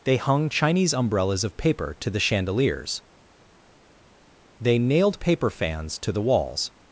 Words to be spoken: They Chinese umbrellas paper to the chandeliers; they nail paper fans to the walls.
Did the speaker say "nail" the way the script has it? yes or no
no